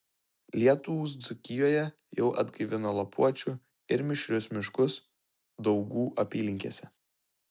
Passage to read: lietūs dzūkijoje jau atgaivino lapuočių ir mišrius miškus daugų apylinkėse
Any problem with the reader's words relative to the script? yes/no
no